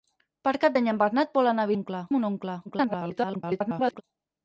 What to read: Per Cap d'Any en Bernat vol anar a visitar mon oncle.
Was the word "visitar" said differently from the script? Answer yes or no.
yes